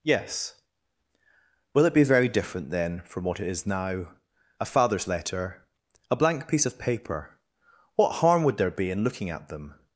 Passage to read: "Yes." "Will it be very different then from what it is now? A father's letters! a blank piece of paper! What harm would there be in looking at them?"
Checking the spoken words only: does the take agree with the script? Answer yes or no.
no